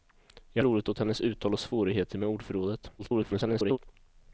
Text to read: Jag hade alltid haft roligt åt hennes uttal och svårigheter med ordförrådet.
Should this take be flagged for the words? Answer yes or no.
yes